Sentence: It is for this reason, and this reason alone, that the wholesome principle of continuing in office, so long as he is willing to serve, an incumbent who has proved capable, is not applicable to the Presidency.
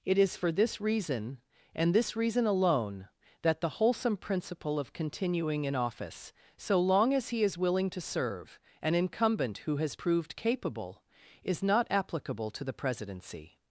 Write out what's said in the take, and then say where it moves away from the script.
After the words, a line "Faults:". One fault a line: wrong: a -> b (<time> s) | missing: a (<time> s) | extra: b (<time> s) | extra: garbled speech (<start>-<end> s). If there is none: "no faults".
It is for this reason, and this reason alone, that the wholesome principle of continuing in office, so long as he is willing to serve, an incumbent who has proved capable, is not applicable to the Presidency.
Faults:
no faults